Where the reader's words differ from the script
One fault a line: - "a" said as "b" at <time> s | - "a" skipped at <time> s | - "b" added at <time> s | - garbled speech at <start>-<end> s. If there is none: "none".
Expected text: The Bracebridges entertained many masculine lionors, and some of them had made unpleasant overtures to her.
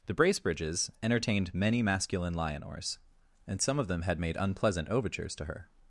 none